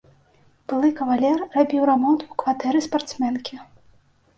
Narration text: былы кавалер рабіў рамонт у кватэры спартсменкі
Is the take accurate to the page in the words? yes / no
yes